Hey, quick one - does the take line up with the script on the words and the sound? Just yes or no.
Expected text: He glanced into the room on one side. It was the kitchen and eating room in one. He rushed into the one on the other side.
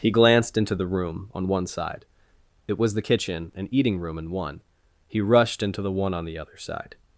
yes